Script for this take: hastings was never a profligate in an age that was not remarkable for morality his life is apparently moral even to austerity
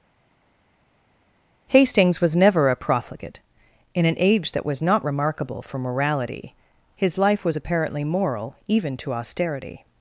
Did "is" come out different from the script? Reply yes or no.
yes